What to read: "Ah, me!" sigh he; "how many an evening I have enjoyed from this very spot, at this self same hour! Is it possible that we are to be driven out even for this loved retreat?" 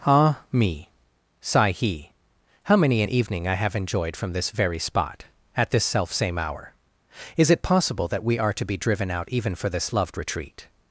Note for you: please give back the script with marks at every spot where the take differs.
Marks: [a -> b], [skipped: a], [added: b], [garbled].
"Ah, me!" sigh he; "how many an evening I have enjoyed from this very spot, at this self same hour! Is it possible that we are to be driven out even for this loved retreat?"